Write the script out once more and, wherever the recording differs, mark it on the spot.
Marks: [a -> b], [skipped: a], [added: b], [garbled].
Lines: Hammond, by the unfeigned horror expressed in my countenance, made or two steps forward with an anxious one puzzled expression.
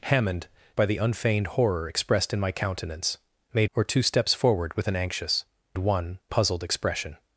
Hammond, by the unfeigned horror expressed in my countenance, made or two steps forward with an anxious one puzzled expression.